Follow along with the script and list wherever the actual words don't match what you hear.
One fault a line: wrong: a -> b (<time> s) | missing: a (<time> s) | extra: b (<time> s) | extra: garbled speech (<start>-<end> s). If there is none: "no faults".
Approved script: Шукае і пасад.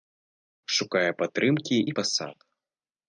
extra: падтрымкі (1.2 s)